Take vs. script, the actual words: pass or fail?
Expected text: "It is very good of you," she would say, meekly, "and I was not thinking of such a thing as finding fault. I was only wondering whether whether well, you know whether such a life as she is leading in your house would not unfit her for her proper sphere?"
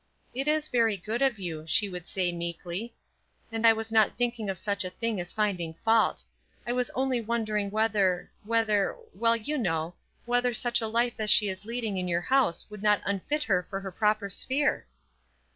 pass